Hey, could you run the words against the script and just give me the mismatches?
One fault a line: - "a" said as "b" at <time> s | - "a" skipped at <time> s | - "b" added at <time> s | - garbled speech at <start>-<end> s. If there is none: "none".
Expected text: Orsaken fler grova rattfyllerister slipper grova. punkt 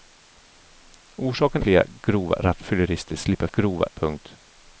none